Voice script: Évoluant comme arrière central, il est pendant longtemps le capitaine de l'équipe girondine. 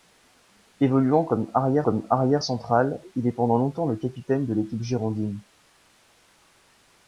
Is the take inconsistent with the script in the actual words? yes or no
yes